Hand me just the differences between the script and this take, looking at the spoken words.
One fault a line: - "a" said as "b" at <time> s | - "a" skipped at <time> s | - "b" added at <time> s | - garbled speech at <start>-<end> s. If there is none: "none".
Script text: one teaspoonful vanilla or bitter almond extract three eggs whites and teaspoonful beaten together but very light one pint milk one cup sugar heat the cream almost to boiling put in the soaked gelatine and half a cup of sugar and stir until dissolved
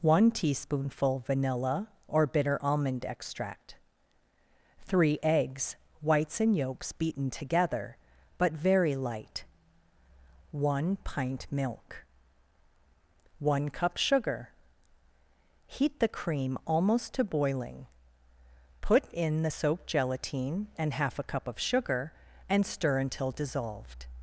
- "teaspoonful" said as "yolks" at 6.6 s